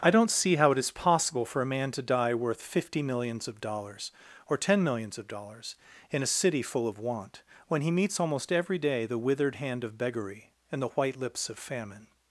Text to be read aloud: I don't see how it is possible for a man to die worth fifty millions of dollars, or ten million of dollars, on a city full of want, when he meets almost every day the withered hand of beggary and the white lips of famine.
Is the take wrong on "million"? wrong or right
wrong